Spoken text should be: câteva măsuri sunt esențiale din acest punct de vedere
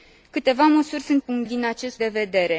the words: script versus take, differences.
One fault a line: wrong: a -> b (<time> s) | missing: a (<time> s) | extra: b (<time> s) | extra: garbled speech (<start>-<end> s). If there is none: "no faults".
wrong: esențiale -> punct (1.2 s)
missing: punct (2.0 s)